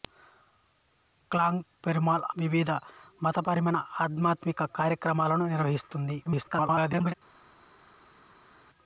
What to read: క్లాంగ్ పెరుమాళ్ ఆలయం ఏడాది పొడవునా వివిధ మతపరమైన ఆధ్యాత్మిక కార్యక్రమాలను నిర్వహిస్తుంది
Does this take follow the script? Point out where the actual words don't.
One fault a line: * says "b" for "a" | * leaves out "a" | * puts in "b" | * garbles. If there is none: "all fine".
* leaves out "ఆలయం ఏడాది పొడవునా"
* garbles